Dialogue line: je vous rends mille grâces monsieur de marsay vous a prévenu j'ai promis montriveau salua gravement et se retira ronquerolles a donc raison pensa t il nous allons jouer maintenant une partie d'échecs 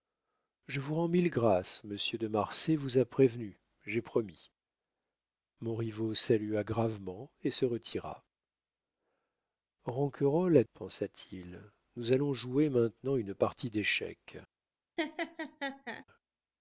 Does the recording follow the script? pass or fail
fail